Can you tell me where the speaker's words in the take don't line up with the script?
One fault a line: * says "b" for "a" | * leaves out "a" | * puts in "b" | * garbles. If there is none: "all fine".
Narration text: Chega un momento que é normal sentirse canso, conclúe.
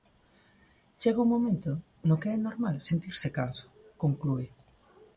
* puts in "no"